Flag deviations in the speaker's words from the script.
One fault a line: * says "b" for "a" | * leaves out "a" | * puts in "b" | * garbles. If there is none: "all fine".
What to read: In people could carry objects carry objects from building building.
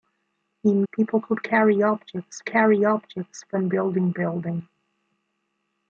all fine